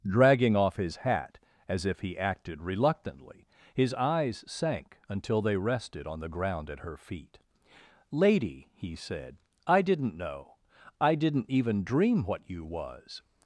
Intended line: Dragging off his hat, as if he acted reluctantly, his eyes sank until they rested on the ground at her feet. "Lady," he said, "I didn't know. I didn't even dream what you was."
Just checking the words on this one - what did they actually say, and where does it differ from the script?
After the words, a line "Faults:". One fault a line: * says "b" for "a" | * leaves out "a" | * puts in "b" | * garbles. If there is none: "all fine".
Dragging off his hat, as if he acted reluctantly, his eyes sank until they rested on the ground at her feet. "Lady," he said, "I didn't know. I didn't even dream what you was."
Faults:
all fine